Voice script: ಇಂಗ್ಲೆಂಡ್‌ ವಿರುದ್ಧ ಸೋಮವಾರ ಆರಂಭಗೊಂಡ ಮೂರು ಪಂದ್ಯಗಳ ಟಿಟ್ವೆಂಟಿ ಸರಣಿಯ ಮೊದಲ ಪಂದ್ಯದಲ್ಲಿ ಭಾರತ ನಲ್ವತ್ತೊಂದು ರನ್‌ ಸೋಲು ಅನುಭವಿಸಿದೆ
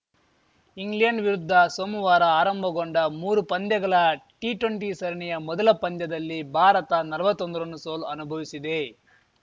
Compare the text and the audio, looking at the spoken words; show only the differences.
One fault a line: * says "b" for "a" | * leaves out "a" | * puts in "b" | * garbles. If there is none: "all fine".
all fine